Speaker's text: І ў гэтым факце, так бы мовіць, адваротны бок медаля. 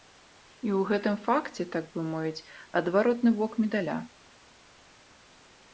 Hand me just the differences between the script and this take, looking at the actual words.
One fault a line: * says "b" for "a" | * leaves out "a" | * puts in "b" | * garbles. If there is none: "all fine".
all fine